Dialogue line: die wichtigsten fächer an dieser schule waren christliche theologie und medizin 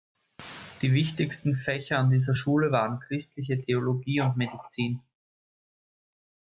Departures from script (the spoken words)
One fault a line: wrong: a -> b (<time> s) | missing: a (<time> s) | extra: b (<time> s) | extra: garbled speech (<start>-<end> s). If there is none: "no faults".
no faults